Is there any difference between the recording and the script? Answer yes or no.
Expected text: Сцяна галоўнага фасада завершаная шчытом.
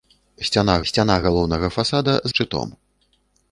yes